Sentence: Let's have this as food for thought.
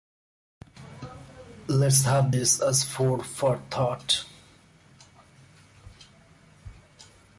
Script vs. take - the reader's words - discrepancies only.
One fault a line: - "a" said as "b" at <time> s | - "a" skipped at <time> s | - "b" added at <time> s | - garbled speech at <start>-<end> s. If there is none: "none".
none